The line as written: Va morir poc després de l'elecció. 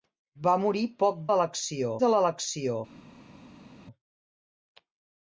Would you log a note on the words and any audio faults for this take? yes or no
yes